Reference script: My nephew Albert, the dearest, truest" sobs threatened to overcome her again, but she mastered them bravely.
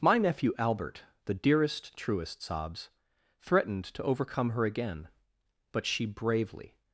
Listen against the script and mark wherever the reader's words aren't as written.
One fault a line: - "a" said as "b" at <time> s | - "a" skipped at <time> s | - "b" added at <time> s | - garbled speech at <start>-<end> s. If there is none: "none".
- "mastered them" skipped at 6.1 s